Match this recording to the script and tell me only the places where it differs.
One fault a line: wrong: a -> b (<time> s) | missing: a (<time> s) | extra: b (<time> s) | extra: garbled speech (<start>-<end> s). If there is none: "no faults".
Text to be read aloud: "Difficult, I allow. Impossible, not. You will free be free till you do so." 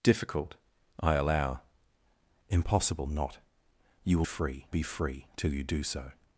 no faults